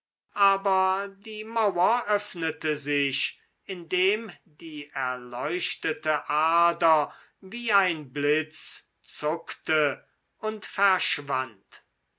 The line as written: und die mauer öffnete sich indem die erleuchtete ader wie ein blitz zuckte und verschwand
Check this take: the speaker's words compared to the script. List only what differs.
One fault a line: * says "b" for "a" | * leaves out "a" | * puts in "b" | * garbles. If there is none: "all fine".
* says "aber" for "und"